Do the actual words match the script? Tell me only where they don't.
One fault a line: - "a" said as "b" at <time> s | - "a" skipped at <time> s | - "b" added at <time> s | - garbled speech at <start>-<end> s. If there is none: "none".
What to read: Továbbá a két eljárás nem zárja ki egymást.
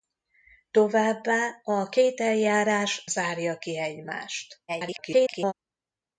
- "nem" skipped at 3.0 s
- garbled speech at 4.7-5.5 s